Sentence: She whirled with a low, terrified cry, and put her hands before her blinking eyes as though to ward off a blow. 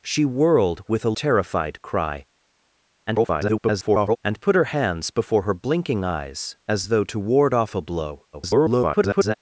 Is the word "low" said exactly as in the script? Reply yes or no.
no